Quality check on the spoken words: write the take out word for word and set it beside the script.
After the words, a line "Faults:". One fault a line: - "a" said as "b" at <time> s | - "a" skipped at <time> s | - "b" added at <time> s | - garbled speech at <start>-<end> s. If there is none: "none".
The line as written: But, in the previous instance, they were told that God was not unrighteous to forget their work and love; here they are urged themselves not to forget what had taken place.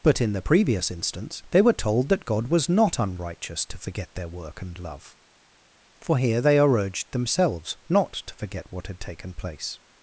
But, in the previous instance, they were told that God was not unrighteous to forget their work and love; for here they are urged themselves not to forget what had taken place.
Faults:
- "for" added at 6.0 s